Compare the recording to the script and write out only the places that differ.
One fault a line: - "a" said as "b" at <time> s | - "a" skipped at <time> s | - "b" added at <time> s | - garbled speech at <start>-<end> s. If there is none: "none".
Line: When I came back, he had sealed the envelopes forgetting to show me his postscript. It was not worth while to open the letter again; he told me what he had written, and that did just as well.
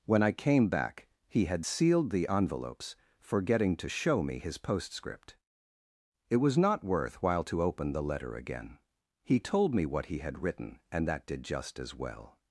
none